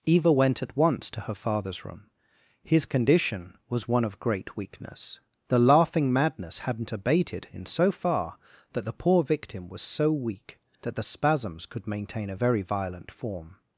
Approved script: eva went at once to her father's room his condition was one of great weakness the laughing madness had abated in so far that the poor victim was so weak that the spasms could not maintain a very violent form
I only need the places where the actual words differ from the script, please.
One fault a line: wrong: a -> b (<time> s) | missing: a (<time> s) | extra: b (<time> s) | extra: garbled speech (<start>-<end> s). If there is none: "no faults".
wrong: had -> hadn't (6.6 s)
missing: not (11.9 s)